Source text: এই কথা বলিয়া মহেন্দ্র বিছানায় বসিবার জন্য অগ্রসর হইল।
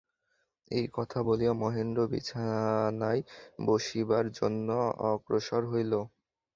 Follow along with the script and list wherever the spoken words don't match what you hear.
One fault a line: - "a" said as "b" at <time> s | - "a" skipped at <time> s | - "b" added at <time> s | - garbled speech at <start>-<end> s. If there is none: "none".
none